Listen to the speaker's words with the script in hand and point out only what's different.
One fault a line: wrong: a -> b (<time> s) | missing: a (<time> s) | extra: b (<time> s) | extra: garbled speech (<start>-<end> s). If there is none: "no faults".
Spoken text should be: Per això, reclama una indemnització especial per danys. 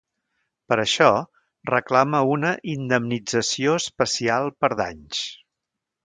no faults